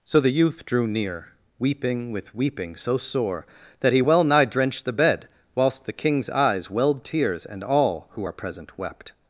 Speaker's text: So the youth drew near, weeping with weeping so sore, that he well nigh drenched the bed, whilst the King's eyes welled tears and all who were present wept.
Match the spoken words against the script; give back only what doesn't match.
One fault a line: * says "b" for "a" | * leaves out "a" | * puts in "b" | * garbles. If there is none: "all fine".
* says "are" for "were"